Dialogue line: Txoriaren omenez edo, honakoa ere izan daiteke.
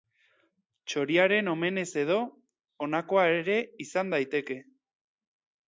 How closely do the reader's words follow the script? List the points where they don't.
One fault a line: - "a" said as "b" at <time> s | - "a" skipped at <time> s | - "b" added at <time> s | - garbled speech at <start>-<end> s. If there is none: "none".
none